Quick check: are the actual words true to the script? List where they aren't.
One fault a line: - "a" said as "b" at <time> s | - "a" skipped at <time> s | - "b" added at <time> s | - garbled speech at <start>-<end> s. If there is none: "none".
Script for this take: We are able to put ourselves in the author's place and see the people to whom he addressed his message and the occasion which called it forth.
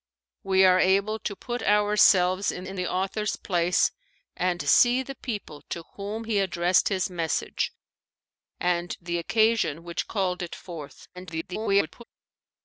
- "in" added at 2.6 s
- garbled speech at 11.1-12.0 s